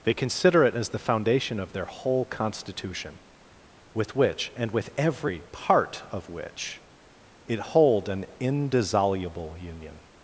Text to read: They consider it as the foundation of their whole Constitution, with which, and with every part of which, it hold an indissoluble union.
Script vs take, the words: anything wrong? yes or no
no